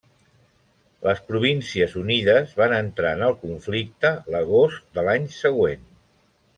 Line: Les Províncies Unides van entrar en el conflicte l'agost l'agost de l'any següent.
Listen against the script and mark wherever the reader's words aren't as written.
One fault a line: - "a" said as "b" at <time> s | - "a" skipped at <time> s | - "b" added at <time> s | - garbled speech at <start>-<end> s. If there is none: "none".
- "l'agost" skipped at 4.9 s